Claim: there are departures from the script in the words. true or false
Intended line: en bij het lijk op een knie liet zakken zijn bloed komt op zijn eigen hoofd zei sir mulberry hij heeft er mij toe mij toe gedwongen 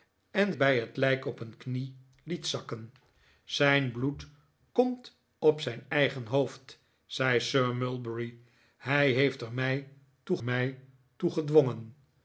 false